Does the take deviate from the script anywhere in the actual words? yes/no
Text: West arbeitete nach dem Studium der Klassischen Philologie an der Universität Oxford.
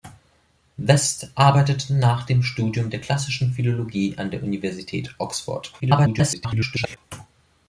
yes